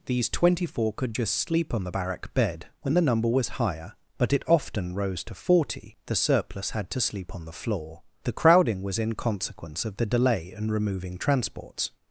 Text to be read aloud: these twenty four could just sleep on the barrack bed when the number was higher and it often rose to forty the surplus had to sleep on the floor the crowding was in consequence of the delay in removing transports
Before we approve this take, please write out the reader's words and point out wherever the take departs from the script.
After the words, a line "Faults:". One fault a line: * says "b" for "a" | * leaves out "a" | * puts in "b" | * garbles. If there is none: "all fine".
these twenty four could just sleep on the barrack bed when the number was higher but it often rose to forty the surplus had to sleep on the floor the crowding was in consequence of the delay in removing transports
Faults:
* says "but" for "and"